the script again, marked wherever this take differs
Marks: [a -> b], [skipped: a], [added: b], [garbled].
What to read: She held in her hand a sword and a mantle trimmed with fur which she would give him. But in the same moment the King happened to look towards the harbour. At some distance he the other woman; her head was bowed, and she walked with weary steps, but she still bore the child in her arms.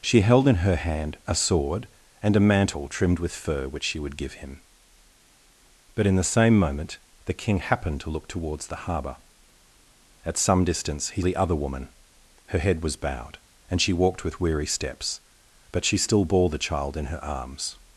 She held in her hand a sword and a mantle trimmed with fur which she would give him. But in the same moment the King happened to look towards the harbour. At some distance he the other woman; her head was bowed, and she walked with weary steps, but she still bore the child in her arms.